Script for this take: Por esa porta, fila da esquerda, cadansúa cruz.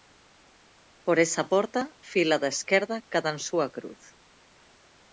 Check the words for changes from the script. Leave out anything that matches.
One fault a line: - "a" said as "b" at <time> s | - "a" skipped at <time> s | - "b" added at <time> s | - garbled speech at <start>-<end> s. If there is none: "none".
none